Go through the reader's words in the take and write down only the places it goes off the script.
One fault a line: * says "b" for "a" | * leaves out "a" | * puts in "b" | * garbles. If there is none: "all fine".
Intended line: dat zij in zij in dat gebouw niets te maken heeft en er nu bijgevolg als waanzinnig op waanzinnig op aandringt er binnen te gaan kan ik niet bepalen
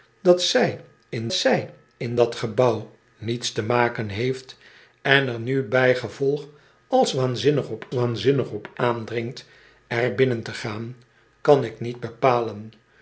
all fine